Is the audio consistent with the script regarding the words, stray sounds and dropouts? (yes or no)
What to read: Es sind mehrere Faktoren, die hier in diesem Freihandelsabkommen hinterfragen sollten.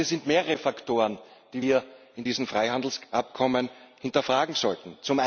yes